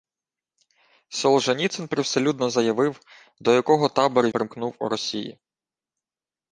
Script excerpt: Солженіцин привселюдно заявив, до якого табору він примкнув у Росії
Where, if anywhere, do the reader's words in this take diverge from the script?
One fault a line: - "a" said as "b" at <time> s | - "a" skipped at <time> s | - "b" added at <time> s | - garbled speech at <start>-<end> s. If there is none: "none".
- "він" skipped at 4.3 s